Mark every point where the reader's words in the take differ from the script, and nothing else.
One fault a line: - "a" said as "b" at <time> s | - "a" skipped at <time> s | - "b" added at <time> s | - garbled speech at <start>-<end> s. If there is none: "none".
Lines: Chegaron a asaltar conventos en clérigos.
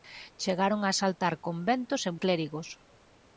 none